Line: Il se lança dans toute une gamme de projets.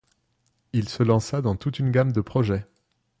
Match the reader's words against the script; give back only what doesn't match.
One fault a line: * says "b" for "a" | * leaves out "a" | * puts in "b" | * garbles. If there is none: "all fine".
all fine